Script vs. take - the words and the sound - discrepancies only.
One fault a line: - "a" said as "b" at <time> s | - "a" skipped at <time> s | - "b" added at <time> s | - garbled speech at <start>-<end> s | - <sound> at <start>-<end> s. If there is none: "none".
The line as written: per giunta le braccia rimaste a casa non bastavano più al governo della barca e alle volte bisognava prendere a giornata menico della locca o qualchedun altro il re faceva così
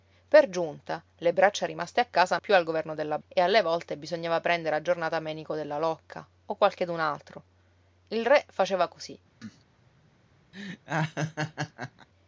- "non bastavano" skipped at 2.4 s
- "barca" skipped at 3.2 s
- cough at 9.4-9.6 s
- laugh at 10.5-12.1 s